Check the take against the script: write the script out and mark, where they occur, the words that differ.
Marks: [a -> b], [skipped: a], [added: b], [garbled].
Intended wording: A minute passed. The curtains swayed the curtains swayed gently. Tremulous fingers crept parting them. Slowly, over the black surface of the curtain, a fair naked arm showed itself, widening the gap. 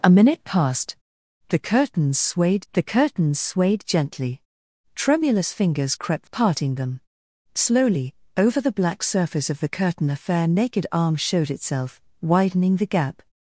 A minute passed. The curtains swayed the curtains swayed gently. Tremulous fingers crept parting them. Slowly, over the black surface of the curtain, a fair naked arm showed itself, widening the gap.